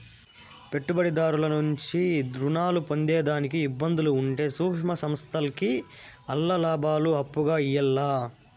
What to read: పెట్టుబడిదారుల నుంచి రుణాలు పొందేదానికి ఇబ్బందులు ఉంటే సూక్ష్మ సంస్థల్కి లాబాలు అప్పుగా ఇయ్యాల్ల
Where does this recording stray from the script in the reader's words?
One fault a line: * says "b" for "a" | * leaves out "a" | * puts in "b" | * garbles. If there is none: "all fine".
* puts in "ఆల్ల"